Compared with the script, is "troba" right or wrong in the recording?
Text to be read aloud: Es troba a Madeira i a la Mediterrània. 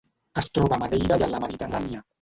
right